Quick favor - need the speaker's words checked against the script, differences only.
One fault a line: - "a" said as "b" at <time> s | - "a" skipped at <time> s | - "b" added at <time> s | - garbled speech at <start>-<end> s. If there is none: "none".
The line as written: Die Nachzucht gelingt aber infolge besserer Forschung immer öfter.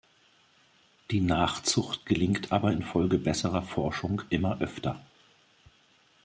none